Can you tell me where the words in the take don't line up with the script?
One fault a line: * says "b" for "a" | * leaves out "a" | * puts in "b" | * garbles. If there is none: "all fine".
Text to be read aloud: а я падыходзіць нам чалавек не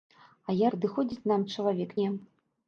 all fine